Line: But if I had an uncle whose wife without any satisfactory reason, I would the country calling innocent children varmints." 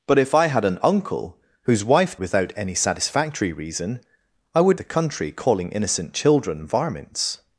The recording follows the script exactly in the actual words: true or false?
true